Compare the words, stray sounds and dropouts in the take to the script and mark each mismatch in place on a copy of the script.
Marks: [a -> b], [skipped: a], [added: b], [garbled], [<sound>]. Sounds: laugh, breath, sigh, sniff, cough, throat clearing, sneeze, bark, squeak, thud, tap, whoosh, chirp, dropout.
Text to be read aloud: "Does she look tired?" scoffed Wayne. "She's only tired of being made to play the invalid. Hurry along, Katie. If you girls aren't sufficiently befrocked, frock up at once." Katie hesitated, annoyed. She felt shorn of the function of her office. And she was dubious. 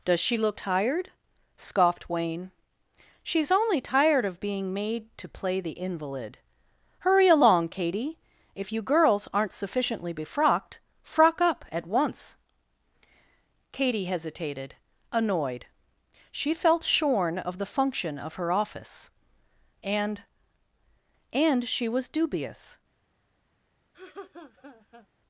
"Does she look tired?" scoffed Wayne. "She's only tired of being made to play the invalid. Hurry along, Katie. If you girls aren't sufficiently befrocked, frock up at once." Katie hesitated, annoyed. She felt shorn of the function of her office. And [added: And] she was dubious. [laugh]